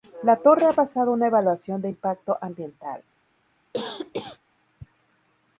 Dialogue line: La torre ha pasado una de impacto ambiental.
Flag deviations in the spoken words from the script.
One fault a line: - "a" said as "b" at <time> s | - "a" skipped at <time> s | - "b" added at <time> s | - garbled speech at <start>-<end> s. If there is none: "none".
- "evaluación" added at 1.3 s